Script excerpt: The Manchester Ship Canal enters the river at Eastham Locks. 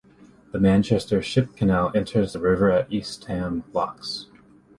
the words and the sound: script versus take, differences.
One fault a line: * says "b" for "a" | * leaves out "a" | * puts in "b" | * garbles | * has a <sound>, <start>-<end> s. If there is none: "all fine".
all fine